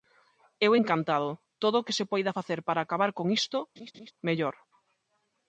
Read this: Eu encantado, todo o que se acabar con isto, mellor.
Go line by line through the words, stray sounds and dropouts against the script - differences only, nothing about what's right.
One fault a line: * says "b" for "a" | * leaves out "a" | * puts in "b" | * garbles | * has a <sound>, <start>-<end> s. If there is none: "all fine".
* puts in "poida facer para"
* has a laugh, 3.8-4.1 s